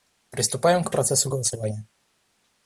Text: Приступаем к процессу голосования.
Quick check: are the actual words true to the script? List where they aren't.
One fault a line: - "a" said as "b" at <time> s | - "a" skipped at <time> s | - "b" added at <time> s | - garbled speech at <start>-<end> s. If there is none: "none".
none